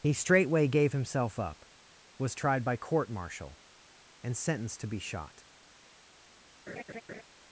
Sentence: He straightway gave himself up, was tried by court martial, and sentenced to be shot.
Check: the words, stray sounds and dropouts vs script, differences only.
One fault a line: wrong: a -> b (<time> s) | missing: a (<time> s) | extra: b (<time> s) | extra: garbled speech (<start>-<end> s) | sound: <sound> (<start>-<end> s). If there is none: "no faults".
sound: laugh (6.7-7.2 s)